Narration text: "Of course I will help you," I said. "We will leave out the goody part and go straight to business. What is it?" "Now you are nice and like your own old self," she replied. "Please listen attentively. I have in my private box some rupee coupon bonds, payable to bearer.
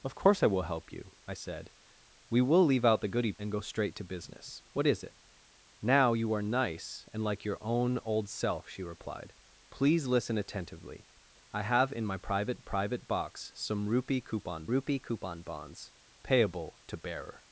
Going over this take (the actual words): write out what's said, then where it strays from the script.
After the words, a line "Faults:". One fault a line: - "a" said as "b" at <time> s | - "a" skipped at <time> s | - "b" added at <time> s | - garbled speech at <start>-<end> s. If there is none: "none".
"Of course I will help you," I said. "We will leave out the goody and go straight to business. What is it?" "Now you are nice and like your own old self," she replied. "Please listen attentively. I have in my private private box some rupee coupon rupee coupon bonds, payable to bearer.
Faults:
- "part" skipped at 3.3 s
- "private" added at 12.6 s
- "rupee coupon" added at 14.7 s